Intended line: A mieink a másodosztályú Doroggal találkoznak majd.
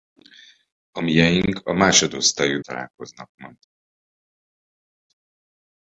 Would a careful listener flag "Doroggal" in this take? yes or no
yes